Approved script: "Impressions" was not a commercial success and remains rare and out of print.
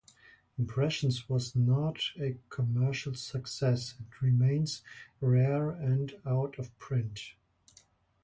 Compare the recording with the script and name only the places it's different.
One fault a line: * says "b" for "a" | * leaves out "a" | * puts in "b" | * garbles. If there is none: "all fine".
all fine